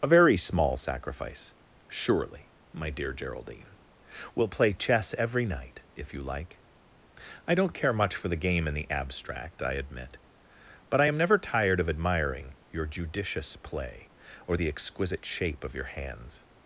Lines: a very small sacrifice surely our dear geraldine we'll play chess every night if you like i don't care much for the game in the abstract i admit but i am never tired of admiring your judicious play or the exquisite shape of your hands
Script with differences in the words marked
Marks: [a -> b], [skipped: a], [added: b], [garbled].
a very small sacrifice surely [our -> my] dear geraldine we'll play chess every night if you like i don't care much for the game in the abstract i admit but i am never tired of admiring your judicious play or the exquisite shape of your hands